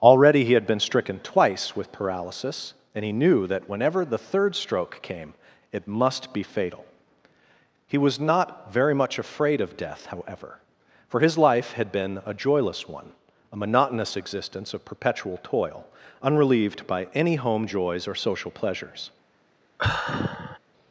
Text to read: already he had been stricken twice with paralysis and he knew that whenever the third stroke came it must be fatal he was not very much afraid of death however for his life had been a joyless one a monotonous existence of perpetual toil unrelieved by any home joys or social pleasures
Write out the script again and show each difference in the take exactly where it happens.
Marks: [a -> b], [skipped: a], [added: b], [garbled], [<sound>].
already he had been stricken twice with paralysis and he knew that whenever the third stroke came it must be fatal he was not very much afraid of death however for his life had been a joyless one a monotonous existence of perpetual toil unrelieved by any home joys or social pleasures [sigh]